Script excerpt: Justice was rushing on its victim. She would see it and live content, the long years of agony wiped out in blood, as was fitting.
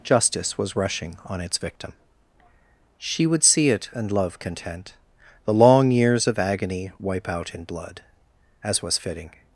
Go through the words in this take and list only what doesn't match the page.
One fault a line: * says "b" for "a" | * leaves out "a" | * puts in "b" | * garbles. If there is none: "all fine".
* says "love" for "live"
* says "wipe" for "wiped"